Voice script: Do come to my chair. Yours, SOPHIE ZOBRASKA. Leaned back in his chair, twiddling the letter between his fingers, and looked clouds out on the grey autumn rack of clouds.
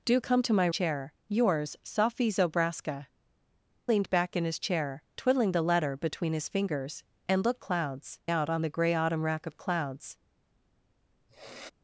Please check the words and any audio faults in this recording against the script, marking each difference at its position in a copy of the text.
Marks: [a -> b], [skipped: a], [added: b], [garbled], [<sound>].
Do come to my chair. Yours, SOPHIE ZOBRASKA. Leaned back in his chair, twiddling the letter between his fingers, and looked clouds out on the grey autumn rack of clouds. [sniff]